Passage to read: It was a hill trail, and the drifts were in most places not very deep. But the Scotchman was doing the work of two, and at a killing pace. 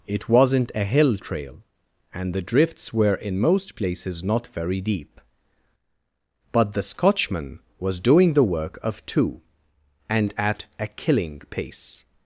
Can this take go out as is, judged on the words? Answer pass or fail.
fail